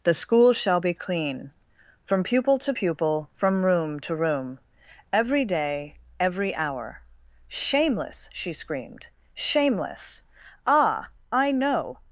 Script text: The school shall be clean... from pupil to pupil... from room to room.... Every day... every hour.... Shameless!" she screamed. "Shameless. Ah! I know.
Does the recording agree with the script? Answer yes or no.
yes